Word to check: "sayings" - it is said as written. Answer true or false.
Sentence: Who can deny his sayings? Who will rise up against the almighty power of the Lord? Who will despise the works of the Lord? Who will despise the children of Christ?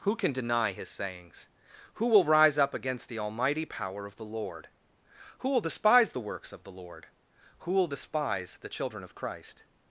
true